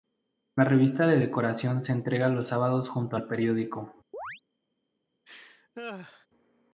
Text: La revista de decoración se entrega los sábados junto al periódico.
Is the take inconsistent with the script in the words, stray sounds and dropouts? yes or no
yes